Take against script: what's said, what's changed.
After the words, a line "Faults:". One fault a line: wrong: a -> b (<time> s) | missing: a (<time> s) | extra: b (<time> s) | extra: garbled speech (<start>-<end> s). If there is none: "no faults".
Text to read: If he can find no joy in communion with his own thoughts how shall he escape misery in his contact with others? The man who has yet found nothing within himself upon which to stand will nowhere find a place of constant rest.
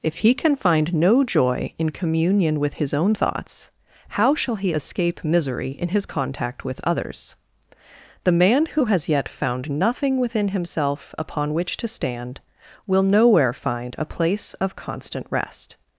If he can find no joy in communion with his own thoughts how shall he escape misery in his contact with others? The man who has yet found nothing within himself upon which to stand will nowhere find a place of constant rest.
Faults:
no faults